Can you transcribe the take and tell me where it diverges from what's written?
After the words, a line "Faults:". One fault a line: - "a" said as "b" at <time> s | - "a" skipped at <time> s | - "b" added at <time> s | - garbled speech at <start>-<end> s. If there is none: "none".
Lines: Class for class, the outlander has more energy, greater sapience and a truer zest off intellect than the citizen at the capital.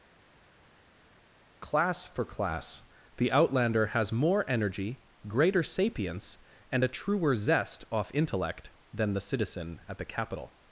Class for class, the outlander has more energy, greater sapience and a truer zest off intellect than the citizen at the capital.
Faults:
none